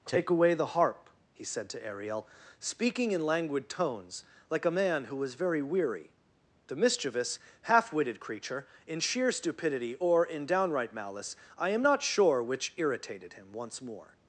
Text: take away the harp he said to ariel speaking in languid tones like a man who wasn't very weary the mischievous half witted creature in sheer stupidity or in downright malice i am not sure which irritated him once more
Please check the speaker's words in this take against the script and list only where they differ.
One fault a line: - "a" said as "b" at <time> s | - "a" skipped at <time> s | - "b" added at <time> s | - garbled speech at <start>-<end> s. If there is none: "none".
- "wasn't" said as "was" at 5.2 s